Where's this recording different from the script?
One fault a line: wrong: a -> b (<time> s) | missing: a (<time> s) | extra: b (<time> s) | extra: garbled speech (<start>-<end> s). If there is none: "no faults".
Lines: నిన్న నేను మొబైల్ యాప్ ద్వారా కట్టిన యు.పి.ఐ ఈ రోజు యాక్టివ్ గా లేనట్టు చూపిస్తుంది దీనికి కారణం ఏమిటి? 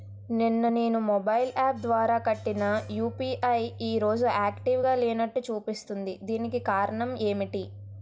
no faults